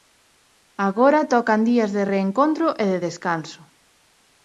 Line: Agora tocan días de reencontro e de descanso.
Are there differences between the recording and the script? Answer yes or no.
no